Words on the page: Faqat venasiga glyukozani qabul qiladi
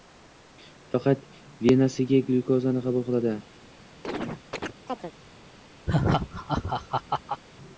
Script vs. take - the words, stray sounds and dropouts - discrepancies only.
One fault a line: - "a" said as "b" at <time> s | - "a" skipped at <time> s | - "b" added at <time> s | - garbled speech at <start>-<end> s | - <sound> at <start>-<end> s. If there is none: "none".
- chirp at 4.0-5.1 s
- laugh at 5.9-7.4 s